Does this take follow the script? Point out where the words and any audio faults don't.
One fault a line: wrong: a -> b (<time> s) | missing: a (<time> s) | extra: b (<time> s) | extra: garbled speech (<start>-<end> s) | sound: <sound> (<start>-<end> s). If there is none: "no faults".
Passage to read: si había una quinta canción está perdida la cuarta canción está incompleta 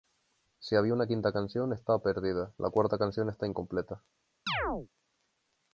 sound: chirp (4.5-4.9 s)